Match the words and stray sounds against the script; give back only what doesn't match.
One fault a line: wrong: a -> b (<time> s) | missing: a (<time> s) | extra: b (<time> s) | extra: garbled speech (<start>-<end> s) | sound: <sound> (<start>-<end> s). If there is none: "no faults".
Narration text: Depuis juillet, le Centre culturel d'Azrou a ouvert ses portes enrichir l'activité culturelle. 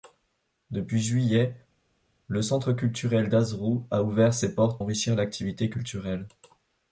no faults